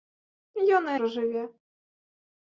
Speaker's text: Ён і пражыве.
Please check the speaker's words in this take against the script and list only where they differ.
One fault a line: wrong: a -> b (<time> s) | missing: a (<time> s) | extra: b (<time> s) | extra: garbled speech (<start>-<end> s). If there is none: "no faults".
no faults